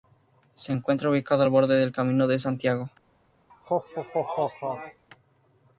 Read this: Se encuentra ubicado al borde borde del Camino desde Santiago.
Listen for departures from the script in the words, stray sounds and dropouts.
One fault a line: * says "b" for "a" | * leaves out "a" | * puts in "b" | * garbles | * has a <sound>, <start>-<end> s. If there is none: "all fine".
* leaves out "borde"
* says "de" for "desde"
* has a laugh, 3.5-5.0 s